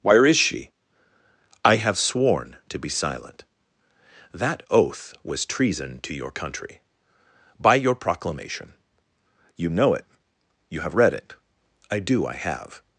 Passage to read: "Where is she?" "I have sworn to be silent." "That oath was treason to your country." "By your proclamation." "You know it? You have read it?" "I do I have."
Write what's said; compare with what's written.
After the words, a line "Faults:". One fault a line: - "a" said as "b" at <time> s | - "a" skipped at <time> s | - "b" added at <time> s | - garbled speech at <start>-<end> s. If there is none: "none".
"Where is she?" "I have sworn to be silent." "That oath was treason to your country." "By your proclamation." "You know it? You have read it?" "I do I have."
Faults:
none